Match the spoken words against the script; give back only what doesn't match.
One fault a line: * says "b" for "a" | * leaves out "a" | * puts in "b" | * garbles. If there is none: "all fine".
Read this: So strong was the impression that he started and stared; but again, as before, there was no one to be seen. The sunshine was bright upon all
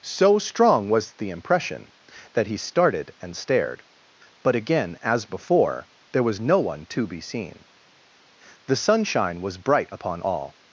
all fine